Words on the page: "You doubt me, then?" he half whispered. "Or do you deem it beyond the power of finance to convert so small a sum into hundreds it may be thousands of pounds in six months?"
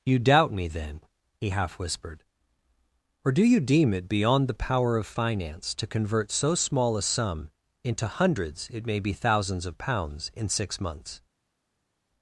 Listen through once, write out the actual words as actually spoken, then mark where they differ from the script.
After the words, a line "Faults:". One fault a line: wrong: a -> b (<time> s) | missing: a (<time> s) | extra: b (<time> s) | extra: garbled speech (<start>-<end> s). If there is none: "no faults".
"You doubt me, then?" he half whispered. "Or do you deem it beyond the power of finance to convert so small a sum into hundreds it may be thousands of pounds in six months?"
Faults:
no faults